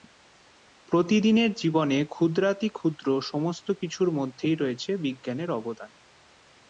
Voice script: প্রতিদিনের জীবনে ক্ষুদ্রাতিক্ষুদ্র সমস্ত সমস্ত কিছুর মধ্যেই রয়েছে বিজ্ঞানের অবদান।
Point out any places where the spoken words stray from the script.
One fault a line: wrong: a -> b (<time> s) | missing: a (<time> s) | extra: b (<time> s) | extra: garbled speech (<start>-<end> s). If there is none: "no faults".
missing: সমস্ত (3.7 s)